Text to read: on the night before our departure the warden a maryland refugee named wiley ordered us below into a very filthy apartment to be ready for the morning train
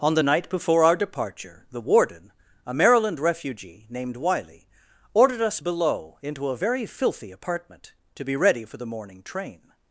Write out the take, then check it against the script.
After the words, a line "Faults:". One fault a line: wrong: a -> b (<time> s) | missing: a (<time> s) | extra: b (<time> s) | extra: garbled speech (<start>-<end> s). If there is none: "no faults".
on the night before our departure the warden a maryland refugee named wiley ordered us below into a very filthy apartment to be ready for the morning train
Faults:
no faults